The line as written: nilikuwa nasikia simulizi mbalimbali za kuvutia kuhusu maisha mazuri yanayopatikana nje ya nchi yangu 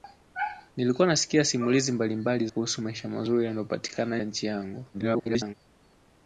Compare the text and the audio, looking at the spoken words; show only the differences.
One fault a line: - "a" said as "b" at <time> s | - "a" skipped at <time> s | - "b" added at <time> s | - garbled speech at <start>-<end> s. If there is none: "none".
- "za kuvutia" skipped at 2.5 s
- "nje" skipped at 4.2 s
- garbled speech at 4.9-5.5 s